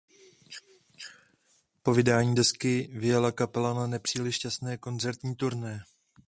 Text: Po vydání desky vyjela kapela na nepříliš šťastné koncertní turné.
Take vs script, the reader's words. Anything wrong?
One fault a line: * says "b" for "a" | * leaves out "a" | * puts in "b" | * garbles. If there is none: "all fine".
all fine